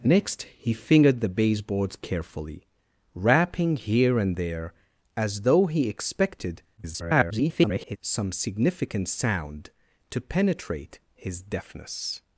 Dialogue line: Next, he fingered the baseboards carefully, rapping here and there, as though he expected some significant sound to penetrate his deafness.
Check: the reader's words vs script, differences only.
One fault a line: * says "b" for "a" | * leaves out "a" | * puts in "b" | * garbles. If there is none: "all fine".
* garbles